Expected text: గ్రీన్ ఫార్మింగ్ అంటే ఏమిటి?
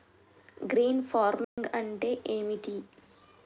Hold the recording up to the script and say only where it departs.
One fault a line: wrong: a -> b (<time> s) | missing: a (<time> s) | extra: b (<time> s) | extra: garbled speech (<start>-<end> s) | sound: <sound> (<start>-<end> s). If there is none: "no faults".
sound: dropout (1.4-1.6 s)